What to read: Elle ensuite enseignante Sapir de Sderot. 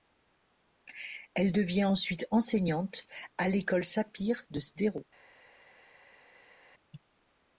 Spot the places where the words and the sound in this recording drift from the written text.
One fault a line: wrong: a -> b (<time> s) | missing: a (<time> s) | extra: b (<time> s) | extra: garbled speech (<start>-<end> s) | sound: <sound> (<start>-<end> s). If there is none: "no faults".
extra: devient (1.5 s)
extra: à l'école (3.4 s)